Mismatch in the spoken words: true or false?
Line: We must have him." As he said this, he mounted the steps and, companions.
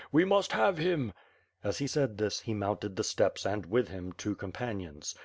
true